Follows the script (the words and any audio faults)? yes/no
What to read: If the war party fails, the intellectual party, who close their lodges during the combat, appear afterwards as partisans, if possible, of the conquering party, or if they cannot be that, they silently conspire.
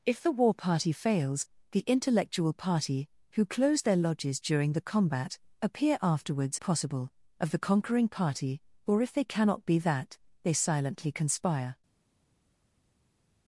no